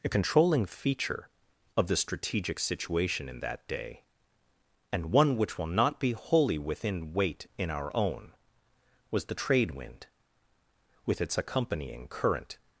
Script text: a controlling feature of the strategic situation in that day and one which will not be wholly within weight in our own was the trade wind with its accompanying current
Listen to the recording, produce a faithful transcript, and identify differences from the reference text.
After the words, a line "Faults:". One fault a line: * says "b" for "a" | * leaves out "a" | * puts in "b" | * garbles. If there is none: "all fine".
a controlling feature of the strategic situation in that day and one which will not be wholly within weight in our own was the trade wind with its accompanying current
Faults:
all fine